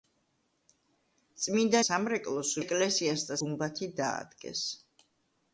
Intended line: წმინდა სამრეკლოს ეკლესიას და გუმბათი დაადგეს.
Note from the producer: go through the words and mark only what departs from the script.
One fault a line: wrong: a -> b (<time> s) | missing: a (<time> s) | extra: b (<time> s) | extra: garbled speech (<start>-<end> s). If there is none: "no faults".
no faults